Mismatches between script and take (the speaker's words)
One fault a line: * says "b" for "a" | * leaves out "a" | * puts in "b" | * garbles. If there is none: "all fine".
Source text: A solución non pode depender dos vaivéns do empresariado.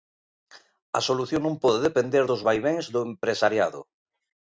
all fine